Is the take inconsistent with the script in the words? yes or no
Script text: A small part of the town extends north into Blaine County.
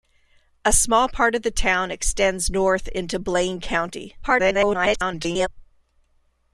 yes